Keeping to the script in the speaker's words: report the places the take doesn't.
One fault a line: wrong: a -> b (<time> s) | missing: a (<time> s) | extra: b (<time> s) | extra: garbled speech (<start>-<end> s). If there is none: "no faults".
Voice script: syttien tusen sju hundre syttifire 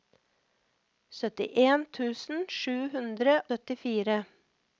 no faults